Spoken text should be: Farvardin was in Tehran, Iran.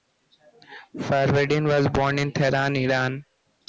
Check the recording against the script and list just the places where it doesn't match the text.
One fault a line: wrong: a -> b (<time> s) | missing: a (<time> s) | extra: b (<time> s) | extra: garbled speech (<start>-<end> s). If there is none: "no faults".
extra: born (1.9 s)